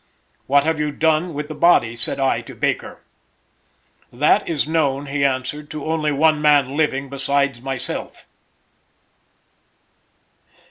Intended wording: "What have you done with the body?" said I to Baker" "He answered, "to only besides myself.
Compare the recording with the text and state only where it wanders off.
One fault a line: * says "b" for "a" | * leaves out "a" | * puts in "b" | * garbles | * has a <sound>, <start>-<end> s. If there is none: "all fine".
* puts in "That is known"
* puts in "one man living"